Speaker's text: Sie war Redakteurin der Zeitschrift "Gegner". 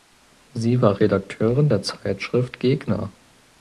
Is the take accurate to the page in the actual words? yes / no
yes